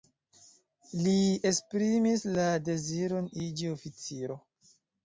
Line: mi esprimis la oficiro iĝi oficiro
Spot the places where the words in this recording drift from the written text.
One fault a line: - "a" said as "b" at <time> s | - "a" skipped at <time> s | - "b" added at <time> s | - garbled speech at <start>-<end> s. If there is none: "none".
- "mi" said as "li" at 1.0 s
- "oficiro" said as "deziron" at 2.7 s